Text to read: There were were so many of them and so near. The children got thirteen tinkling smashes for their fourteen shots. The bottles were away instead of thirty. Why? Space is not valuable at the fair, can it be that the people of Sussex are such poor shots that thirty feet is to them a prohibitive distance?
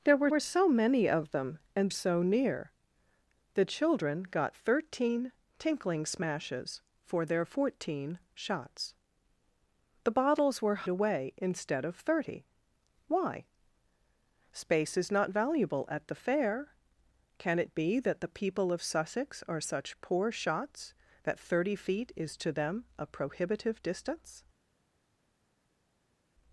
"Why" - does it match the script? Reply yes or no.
yes